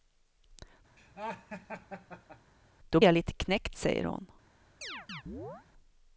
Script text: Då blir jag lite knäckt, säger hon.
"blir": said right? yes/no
no